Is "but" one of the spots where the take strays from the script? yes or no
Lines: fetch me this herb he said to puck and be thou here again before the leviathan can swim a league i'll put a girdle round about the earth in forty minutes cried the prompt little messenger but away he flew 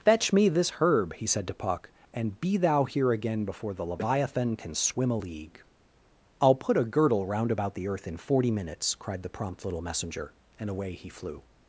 yes